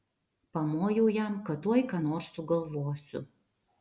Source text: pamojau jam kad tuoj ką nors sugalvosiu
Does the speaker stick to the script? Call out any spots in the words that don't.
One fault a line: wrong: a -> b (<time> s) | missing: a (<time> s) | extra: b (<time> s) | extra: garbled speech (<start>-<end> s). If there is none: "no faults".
no faults